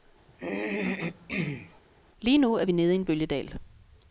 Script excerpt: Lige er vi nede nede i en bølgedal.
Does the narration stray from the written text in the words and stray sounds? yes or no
yes